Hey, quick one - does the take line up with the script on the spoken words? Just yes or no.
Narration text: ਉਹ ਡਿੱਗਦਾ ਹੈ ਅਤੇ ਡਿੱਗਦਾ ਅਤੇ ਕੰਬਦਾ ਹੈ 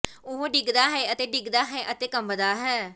no